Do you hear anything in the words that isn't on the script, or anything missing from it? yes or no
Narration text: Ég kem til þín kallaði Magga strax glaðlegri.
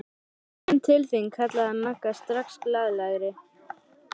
no